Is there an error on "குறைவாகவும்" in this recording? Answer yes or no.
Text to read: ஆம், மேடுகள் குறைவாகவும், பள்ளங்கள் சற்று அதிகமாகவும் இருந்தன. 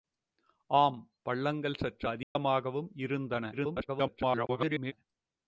yes